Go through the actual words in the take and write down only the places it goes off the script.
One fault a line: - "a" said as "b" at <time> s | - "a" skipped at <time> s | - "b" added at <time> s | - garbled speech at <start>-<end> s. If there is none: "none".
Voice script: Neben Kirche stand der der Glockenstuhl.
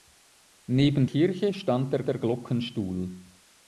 none